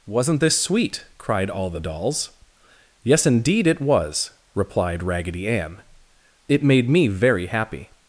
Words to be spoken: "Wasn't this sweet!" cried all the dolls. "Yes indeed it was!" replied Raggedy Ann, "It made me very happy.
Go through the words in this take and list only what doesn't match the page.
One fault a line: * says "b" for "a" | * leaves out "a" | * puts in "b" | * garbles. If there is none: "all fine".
all fine